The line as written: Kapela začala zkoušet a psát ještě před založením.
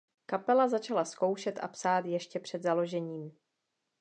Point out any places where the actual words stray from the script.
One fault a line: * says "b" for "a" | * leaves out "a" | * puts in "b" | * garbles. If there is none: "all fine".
all fine